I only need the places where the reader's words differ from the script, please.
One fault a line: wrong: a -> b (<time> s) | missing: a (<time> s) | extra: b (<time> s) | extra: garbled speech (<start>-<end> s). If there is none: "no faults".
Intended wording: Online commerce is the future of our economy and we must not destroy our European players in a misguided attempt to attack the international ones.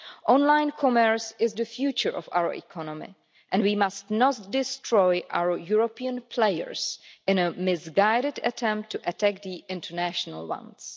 no faults